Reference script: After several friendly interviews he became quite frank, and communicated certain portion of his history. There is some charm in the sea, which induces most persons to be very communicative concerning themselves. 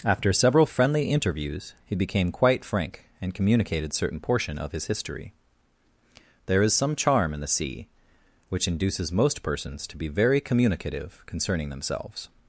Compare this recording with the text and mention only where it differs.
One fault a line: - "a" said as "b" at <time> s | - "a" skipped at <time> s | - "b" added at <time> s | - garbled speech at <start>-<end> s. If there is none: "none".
none